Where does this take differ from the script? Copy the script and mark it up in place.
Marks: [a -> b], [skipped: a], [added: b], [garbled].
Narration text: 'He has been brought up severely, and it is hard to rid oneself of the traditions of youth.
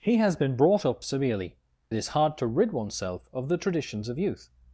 'He has been brought up severely, [skipped: and] it is hard to rid oneself of the traditions of youth.